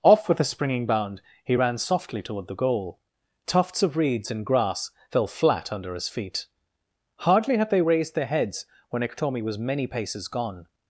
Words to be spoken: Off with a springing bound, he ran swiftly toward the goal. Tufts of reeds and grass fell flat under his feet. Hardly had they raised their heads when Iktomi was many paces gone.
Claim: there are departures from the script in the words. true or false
true